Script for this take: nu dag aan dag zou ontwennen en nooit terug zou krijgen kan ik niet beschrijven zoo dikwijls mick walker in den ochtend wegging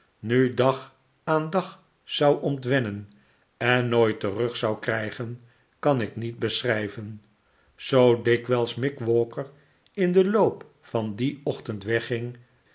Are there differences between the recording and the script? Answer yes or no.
yes